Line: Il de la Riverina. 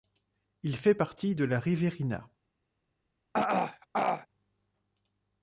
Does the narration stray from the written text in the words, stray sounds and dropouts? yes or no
yes